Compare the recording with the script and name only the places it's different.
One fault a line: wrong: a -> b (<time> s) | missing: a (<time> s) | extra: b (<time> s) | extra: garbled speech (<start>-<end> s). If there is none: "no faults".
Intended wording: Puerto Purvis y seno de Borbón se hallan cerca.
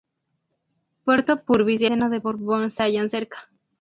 no faults